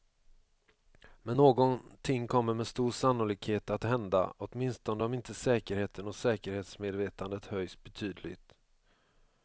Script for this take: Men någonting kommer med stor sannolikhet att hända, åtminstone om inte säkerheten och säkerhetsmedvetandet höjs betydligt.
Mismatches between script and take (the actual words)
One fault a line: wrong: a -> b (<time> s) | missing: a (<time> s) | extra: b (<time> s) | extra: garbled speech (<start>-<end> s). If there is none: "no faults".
no faults